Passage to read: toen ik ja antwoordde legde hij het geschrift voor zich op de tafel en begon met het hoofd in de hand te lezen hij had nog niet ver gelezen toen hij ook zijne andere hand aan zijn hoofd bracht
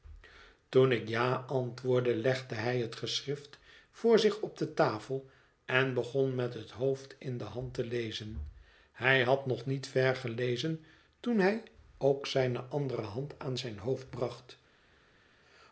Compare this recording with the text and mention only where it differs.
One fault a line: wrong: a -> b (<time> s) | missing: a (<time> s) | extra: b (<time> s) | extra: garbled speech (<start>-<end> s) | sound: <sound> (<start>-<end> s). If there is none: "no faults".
no faults